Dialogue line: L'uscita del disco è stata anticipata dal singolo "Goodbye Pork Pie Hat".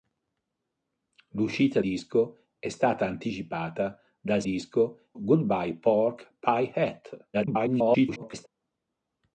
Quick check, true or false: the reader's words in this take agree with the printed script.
false